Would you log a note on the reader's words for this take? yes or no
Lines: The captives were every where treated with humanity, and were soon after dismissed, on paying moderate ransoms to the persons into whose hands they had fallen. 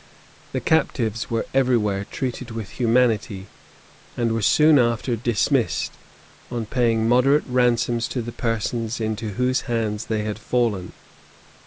no